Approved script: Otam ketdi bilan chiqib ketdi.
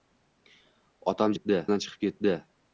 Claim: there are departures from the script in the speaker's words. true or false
false